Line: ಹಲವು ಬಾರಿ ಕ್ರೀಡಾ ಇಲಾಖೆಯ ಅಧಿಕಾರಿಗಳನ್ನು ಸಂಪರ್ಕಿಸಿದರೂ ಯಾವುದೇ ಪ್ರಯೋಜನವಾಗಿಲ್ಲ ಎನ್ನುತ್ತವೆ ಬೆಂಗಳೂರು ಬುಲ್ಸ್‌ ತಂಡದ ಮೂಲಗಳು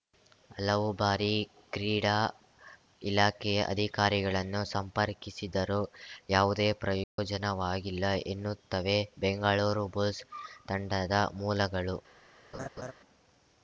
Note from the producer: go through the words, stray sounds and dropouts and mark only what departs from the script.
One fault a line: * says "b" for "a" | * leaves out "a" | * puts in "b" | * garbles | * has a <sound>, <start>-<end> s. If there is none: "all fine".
* has a dropout, 7.0-7.2 s
* has a laugh, 12.5-12.9 s